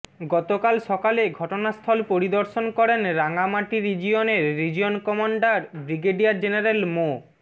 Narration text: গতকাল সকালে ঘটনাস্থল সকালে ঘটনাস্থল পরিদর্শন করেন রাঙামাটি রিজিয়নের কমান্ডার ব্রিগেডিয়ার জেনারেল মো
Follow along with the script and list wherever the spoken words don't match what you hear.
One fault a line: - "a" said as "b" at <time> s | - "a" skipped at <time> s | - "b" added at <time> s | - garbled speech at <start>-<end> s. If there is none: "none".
- "সকালে ঘটনাস্থল" skipped at 2.0 s
- "রিজিয়ন" added at 4.6 s